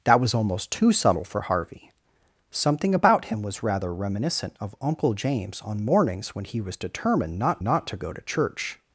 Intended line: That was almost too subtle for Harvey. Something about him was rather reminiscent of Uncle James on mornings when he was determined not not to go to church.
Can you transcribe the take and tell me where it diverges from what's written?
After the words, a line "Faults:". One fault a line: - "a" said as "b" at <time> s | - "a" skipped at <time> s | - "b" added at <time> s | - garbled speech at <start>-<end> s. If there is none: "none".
That was almost too subtle for Harvey. Something about him was rather reminiscent of Uncle James on mornings when he was determined not not to go to church.
Faults:
none